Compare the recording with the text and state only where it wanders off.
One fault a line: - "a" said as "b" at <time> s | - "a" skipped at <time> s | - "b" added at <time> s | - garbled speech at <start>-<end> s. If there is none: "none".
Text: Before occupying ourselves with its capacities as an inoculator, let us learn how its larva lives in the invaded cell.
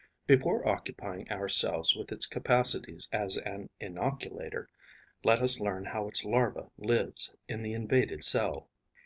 none